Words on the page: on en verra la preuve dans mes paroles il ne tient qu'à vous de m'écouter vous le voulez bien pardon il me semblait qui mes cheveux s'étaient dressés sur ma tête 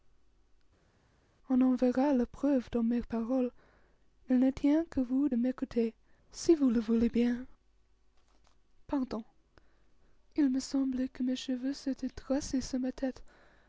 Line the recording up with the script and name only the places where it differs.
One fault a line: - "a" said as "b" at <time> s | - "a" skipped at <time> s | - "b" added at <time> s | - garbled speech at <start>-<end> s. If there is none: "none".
- "si" added at 6.3 s
- "qui" said as "que" at 11.1 s